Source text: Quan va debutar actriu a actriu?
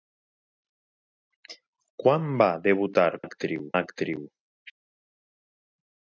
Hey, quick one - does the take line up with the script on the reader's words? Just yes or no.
yes